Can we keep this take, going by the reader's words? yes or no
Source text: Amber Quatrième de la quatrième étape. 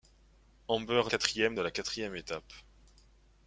yes